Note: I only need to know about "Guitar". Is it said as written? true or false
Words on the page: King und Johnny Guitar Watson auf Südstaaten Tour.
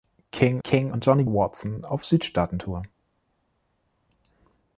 false